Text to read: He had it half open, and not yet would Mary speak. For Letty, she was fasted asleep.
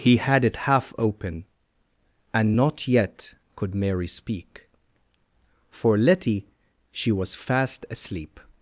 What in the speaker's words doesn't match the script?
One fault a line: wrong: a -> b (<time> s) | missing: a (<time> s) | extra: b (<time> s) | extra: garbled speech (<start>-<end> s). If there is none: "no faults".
wrong: would -> could (3.6 s)
wrong: fasted -> fast (7.3 s)